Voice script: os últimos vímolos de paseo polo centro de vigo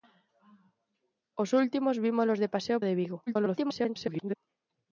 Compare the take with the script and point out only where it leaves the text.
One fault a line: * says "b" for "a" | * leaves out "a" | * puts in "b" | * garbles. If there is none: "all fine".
* leaves out "polo centro"
* garbles